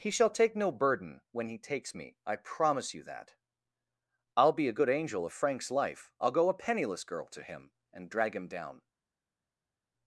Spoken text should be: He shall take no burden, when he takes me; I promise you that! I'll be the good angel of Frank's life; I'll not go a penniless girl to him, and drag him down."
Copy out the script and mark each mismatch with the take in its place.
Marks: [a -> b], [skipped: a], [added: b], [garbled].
He shall take no burden, when he takes me; I promise you that! I'll be [the -> a] good angel of Frank's life; I'll [skipped: not] go a penniless girl to him, and drag him down."